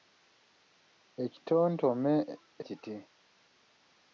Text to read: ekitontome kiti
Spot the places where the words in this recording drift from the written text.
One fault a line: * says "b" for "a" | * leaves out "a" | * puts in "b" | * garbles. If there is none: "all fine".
all fine